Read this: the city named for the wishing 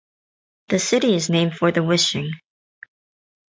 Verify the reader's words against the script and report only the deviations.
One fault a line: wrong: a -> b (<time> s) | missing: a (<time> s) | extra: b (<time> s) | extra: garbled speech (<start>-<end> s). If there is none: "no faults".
extra: is (1.1 s)